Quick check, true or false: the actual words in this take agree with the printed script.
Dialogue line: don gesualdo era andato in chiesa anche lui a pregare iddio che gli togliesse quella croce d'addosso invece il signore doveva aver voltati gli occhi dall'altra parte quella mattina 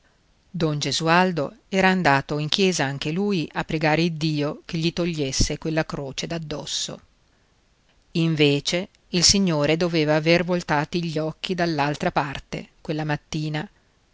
true